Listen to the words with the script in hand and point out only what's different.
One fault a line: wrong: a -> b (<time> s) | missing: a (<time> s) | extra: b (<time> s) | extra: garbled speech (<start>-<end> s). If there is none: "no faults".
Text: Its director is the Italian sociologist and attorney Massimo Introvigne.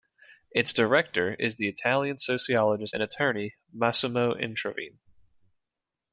no faults